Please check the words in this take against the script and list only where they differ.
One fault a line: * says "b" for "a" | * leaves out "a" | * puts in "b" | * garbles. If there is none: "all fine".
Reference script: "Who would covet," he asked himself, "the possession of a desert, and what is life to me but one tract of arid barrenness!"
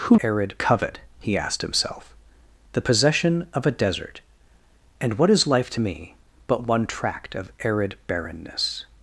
* says "arid" for "would"